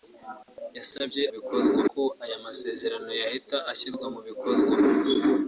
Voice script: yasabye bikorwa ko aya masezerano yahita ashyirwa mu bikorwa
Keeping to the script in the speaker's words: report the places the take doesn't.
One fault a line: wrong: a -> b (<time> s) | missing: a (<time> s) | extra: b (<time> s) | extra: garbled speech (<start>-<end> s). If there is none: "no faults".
no faults